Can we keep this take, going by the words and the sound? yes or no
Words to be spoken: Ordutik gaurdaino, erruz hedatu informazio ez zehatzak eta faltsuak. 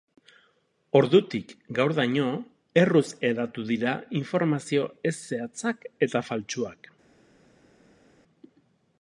no